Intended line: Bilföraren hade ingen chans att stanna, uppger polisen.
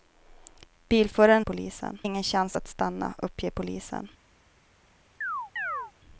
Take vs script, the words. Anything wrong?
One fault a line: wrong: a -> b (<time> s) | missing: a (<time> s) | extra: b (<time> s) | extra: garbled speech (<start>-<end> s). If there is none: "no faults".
wrong: hade -> polisen (1.4 s)